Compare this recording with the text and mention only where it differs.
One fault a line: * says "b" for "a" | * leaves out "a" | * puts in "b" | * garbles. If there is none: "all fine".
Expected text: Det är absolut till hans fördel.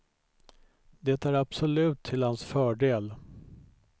all fine